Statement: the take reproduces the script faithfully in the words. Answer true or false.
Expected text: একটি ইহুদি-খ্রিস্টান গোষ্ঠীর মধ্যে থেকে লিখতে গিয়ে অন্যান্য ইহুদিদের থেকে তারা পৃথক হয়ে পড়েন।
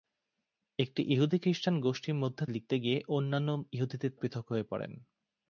false